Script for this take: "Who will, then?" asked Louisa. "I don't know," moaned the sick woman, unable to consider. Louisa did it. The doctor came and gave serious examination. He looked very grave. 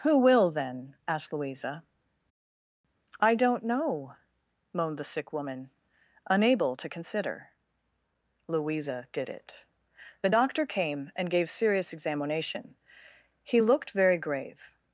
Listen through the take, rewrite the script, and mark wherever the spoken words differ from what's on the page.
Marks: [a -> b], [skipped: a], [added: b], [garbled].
"Who will, then?" asked Louisa. "I don't know," moaned the sick woman, unable to consider. Louisa did it. The doctor came and gave serious examination. He looked very grave.